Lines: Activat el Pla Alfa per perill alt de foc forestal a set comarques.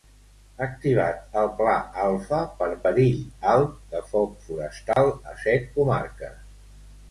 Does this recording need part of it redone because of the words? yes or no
no